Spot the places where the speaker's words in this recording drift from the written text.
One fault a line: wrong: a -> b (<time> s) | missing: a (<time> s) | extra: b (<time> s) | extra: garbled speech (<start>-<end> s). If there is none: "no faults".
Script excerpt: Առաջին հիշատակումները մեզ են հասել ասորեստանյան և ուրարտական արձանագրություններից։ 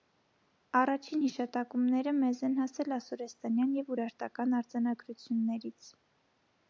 no faults